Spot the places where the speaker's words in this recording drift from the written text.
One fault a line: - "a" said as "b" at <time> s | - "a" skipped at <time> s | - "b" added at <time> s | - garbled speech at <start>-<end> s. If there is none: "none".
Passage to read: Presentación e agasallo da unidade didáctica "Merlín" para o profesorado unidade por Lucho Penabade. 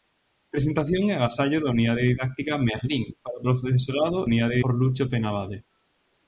none